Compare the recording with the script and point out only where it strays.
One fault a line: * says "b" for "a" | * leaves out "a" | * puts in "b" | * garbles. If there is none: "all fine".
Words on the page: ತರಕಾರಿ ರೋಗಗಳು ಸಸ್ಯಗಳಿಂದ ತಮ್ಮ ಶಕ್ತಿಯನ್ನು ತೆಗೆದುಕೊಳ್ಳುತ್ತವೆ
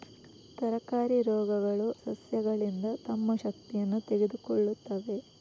all fine